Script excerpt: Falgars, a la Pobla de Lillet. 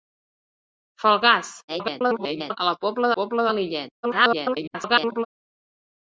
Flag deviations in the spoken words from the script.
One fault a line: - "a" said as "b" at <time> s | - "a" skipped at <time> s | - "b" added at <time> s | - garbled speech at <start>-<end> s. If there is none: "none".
- garbled speech at 1.7-2.6 s
- "Pobla" added at 3.2 s
- garbled speech at 4.0-5.3 s